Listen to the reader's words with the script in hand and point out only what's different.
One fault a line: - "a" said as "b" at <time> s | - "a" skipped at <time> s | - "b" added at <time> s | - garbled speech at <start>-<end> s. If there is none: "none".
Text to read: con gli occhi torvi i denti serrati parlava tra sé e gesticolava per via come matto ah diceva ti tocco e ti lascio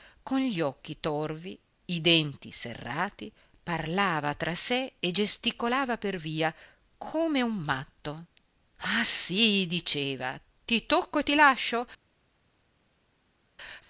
- "un" added at 7.4 s
- "sì" added at 9.0 s